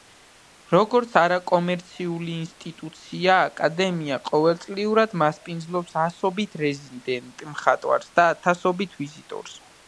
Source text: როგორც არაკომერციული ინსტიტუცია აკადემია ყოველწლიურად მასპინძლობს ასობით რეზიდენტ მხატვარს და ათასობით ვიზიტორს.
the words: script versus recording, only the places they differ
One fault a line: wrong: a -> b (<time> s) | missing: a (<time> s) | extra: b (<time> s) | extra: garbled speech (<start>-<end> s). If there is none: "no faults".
no faults